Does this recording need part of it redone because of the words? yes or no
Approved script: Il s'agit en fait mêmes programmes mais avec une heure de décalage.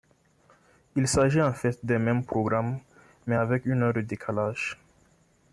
yes